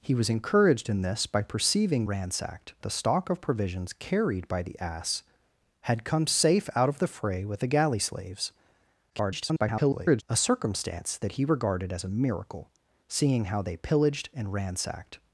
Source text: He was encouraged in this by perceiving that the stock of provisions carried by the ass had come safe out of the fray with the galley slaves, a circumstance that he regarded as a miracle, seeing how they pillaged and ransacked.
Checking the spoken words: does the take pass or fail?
fail